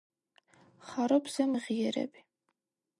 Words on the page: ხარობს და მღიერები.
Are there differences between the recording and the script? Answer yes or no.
no